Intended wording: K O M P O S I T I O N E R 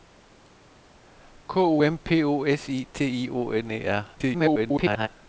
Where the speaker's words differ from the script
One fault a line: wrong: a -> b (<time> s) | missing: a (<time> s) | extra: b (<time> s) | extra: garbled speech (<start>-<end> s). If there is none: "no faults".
extra: garbled speech (4.1-5.1 s)